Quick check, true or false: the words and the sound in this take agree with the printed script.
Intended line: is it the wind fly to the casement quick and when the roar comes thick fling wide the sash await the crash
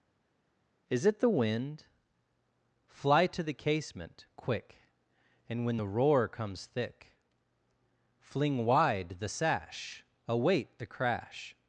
true